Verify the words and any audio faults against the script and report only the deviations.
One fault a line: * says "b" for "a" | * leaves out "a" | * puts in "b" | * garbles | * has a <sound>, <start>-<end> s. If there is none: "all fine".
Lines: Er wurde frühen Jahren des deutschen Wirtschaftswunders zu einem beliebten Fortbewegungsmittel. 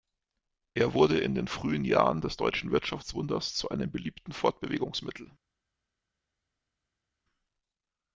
* puts in "in den"